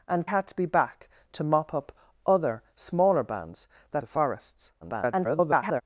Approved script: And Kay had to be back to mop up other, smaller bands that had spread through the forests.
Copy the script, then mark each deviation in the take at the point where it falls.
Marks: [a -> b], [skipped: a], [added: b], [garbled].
And [skipped: Kay] had to be back to mop up other, smaller bands that [skipped: had spread through] the forests. [garbled]